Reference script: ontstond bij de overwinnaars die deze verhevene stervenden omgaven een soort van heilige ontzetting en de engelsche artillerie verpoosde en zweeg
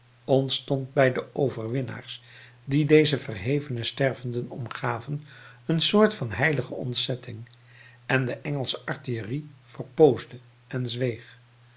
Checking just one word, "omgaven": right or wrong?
right